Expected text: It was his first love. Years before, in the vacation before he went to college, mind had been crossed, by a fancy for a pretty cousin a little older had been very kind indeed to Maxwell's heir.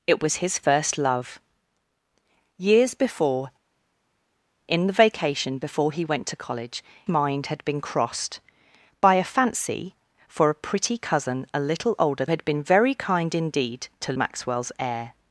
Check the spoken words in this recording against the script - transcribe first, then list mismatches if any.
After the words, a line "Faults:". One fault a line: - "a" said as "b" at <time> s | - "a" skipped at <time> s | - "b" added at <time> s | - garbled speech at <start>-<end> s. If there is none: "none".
It was his first love. Years before, in the vacation before he went to college, mind had been crossed, by a fancy for a pretty cousin a little older had been very kind indeed to Maxwell's heir.
Faults:
none